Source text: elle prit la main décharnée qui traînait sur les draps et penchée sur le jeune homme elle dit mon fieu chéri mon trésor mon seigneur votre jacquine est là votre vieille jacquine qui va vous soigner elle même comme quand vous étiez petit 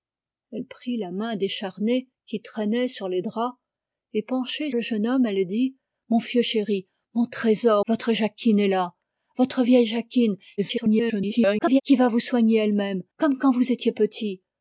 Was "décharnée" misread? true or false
false